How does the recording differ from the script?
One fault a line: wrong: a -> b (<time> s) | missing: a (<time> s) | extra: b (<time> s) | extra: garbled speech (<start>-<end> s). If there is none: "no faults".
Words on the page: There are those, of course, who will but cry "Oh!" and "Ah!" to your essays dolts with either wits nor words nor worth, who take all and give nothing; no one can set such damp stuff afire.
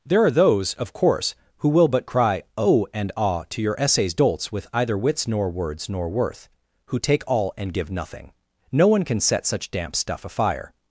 no faults